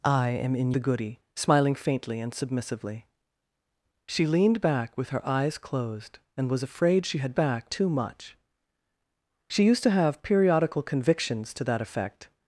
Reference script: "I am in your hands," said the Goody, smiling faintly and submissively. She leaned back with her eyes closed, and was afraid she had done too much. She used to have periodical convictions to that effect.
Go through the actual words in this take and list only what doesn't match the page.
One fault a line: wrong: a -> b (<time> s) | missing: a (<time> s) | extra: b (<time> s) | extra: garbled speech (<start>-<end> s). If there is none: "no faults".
missing: your hands said (0.7 s)
wrong: done -> back (7.4 s)